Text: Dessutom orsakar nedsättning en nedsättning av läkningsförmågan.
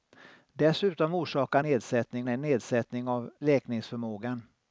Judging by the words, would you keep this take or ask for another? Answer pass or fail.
pass